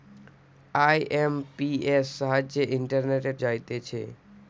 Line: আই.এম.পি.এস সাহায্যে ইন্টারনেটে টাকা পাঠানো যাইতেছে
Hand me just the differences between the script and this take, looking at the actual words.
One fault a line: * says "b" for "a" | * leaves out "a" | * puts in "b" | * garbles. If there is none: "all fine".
* leaves out "টাকা পাঠানো"